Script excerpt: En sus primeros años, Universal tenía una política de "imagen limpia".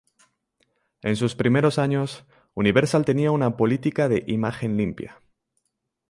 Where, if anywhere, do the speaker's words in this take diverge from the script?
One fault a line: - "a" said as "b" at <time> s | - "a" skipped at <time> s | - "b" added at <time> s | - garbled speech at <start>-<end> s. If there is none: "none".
none